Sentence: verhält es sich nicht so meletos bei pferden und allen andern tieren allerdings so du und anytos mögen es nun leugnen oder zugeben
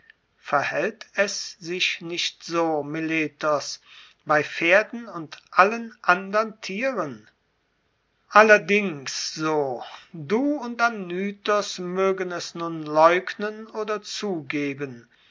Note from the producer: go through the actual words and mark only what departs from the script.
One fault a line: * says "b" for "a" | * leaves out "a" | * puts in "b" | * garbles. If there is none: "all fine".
all fine